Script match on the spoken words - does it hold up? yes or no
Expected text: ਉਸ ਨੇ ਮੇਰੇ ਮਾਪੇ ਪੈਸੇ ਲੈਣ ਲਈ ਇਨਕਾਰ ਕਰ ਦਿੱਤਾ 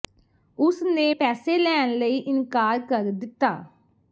no